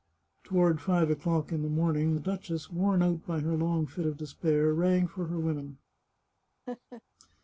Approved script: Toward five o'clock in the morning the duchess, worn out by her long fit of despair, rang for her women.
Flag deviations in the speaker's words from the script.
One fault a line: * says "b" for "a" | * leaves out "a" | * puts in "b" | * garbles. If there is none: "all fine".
all fine